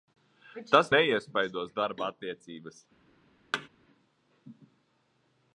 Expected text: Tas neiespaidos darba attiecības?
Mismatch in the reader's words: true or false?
false